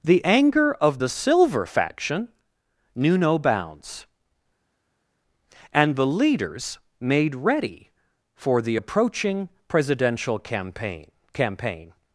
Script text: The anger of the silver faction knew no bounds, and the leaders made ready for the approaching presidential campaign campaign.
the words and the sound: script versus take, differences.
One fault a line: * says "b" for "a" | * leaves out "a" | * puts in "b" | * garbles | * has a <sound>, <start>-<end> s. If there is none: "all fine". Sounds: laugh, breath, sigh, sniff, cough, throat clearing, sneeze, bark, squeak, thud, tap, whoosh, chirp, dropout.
all fine